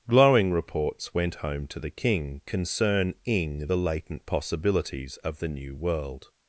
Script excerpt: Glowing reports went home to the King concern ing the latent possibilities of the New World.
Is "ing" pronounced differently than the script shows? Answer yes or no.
no